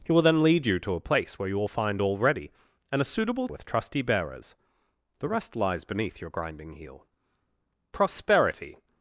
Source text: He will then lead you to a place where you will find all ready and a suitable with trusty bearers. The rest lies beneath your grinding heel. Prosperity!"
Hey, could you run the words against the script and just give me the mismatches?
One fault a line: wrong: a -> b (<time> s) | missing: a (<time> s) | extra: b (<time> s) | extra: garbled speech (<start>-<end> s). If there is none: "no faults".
no faults